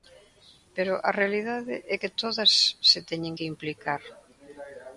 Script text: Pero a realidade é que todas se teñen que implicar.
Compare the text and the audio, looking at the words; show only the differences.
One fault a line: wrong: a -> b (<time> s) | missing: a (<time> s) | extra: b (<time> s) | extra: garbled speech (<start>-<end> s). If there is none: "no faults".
no faults